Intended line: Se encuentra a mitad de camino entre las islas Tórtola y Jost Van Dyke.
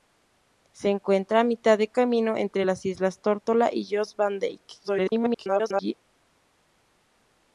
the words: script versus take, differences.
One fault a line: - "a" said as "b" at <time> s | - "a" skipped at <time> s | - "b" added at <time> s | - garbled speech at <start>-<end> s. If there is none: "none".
- garbled speech at 4.8-5.9 s